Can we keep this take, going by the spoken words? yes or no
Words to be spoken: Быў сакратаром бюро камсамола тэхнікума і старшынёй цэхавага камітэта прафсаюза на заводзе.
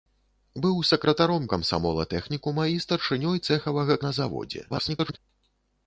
no